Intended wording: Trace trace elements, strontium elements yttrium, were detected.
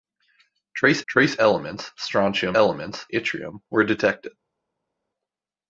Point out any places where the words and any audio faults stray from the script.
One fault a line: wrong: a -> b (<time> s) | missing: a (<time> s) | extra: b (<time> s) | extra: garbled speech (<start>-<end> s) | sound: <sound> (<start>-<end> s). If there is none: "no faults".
no faults